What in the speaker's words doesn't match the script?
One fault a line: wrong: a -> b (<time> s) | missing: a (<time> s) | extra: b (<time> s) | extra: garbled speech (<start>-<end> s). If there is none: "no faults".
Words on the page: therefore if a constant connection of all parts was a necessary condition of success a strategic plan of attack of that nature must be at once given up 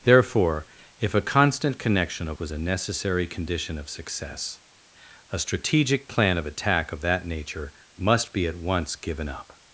missing: all parts (2.4 s)